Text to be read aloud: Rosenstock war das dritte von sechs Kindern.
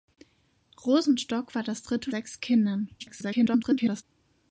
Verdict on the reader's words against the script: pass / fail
fail